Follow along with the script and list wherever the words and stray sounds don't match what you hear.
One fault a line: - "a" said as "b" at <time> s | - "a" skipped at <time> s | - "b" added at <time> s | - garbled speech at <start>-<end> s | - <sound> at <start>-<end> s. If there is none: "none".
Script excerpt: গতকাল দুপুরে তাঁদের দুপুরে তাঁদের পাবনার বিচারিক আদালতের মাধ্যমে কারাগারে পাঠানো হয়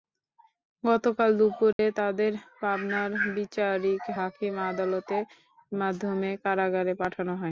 - dropout at 1.7-1.8 s
- "দুপুরে তাঁদের" skipped at 2.3 s
- "হাকিম" added at 4.2 s